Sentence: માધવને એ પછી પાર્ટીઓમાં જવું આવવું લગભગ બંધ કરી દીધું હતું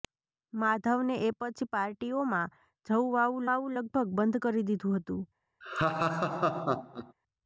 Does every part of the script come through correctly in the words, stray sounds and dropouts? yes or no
no